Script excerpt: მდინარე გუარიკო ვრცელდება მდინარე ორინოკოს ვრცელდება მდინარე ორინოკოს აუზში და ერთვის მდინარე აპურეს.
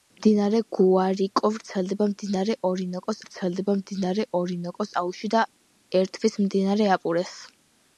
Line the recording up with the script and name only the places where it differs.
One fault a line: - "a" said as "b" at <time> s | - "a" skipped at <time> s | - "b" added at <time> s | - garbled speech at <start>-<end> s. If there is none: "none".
none